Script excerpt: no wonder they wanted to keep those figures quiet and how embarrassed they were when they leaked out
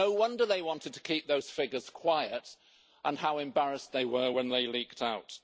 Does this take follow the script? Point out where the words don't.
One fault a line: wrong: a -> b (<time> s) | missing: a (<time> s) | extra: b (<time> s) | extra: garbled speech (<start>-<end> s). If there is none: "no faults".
no faults